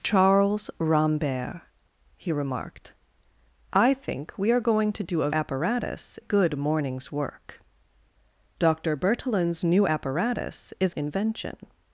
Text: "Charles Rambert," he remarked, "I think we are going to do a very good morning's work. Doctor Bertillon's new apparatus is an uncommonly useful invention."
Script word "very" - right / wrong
wrong